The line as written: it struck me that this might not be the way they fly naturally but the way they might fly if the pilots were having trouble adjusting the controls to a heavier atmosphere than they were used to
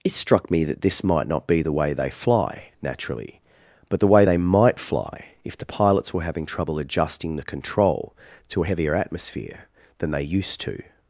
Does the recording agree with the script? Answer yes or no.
no